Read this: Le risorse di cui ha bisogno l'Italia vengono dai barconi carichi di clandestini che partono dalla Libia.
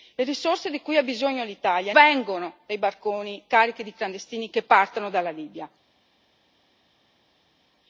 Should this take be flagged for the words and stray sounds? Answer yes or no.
no